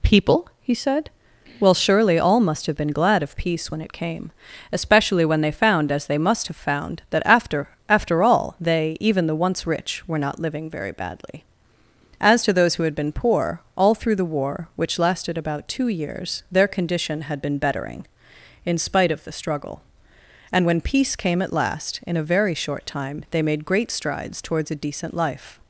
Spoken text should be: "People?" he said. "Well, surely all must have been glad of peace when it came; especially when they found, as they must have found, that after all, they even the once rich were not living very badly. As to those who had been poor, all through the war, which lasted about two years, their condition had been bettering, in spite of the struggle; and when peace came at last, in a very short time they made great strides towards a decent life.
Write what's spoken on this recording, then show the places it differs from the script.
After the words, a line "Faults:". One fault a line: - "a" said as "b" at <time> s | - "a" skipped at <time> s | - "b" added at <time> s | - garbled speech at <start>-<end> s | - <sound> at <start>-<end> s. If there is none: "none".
"People?" he said. "Well, surely all must have been glad of peace when it came; especially when they found, as they must have found, that after after all, they even the once rich were not living very badly. As to those who had been poor, all through the war, which lasted about two years, their condition had been bettering, in spite of the struggle; and when peace came at last, in a very short time they made great strides towards a decent life.
Faults:
- "after" added at 7.9 s